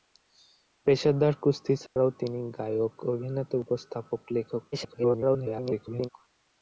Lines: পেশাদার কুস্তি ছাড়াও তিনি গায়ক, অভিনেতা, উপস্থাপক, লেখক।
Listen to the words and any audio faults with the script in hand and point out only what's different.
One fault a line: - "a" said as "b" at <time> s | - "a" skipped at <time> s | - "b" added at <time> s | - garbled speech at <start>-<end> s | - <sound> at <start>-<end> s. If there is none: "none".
- dropout at 1.9-2.0 s
- garbled speech at 4.7-6.1 s